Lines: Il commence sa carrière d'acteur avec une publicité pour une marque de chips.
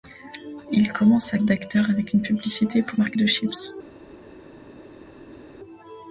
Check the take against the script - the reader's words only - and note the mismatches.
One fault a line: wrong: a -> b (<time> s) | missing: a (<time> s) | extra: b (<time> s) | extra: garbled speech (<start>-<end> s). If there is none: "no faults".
missing: carrière (1.4 s)
missing: une (3.0 s)